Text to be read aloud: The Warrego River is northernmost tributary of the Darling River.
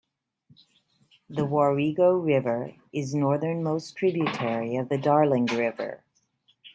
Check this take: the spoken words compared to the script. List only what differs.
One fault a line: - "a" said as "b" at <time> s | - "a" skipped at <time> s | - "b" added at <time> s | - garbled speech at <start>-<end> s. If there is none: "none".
none